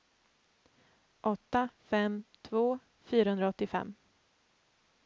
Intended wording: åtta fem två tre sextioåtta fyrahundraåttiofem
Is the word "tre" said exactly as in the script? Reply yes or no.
no